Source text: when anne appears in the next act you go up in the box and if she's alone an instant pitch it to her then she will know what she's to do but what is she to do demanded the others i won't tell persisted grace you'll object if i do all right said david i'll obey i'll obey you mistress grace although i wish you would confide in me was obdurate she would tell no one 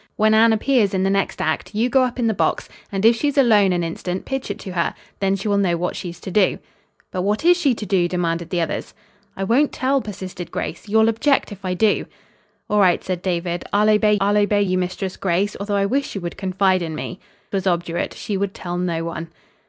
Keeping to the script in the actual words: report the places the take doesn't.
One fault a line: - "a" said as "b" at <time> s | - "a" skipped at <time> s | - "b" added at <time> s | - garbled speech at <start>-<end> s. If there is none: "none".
none